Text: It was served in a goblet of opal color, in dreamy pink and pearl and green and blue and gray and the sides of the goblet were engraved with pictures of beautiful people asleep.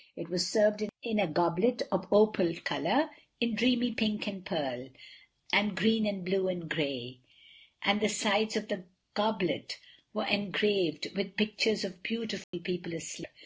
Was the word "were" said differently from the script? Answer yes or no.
no